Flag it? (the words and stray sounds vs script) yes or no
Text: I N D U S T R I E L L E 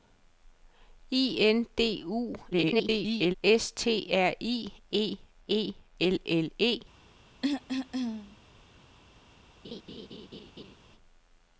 yes